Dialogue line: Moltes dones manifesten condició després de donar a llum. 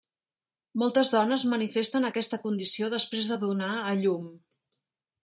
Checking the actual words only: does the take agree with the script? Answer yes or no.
no